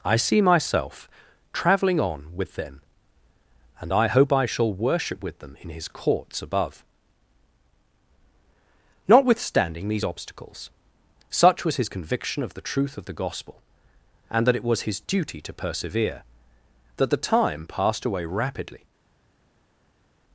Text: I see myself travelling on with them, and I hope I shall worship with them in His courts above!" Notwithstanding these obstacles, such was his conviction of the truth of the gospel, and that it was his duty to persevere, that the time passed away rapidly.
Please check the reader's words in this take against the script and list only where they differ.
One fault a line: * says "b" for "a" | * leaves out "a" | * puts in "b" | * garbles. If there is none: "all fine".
all fine